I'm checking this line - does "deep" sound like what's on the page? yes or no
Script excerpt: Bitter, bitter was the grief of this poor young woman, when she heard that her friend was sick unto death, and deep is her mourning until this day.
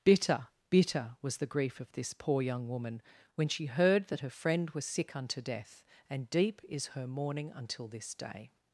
yes